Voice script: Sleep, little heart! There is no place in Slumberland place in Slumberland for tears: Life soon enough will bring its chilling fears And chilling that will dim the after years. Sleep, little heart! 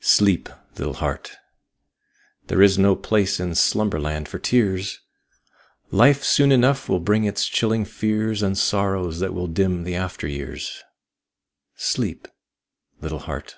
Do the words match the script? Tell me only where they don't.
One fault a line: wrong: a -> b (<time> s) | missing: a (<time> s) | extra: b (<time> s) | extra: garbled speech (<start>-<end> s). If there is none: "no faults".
missing: place in Slumberland (4.3 s)
wrong: chilling -> sorrows (8.6 s)